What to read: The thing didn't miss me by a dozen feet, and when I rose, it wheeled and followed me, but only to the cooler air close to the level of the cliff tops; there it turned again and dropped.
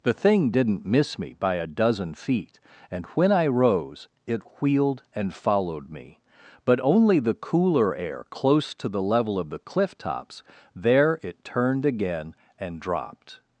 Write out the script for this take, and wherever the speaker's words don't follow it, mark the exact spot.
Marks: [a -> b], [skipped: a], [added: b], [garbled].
The thing didn't miss me by a dozen feet, and when I rose, it wheeled and followed me, but only [skipped: to] the cooler air close to the level of the cliff tops; there it turned again and dropped.